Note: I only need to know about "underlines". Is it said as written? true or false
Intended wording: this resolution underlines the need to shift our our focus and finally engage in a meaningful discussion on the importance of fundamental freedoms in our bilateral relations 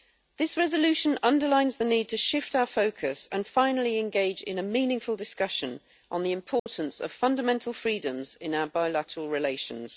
true